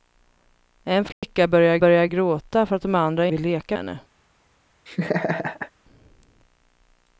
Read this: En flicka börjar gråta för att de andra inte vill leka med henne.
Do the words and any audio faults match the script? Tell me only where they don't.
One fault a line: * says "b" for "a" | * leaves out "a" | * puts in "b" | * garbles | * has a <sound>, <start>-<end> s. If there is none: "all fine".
* has a dropout, 1.1-1.2 s
* puts in "börjar"
* leaves out "inte"
* leaves out "med"
* has a laugh, 4.9-5.7 s